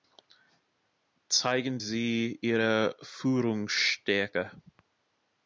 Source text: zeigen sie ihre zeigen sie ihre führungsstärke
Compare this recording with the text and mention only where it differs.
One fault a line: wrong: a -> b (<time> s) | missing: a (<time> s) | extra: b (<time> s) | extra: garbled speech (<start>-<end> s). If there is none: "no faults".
missing: zeigen sie ihre (3.0 s)